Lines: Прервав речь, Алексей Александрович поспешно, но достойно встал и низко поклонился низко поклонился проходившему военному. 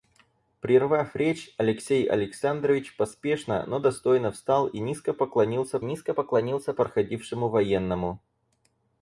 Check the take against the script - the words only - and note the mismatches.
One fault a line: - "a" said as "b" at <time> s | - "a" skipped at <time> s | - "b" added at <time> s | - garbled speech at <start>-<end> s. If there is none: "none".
none